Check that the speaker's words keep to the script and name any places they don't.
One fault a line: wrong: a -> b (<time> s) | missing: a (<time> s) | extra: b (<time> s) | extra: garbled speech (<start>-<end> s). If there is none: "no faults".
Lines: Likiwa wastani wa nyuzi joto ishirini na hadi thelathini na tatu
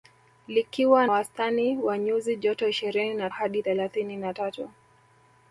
no faults